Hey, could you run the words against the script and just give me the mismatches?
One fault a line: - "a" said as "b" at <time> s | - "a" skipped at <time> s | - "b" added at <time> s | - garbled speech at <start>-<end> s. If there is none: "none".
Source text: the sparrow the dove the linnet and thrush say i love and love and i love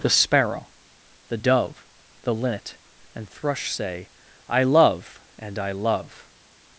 - "love and" skipped at 5.6 s